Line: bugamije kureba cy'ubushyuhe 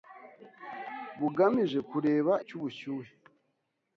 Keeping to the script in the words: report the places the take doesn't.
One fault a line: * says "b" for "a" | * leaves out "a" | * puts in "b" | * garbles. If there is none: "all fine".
all fine